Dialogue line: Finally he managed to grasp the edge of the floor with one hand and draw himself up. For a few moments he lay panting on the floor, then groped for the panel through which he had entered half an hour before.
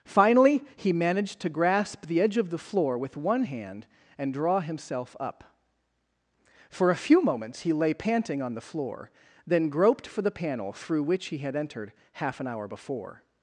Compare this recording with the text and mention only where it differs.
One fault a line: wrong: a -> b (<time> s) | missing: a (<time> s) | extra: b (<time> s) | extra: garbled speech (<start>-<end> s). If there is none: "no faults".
no faults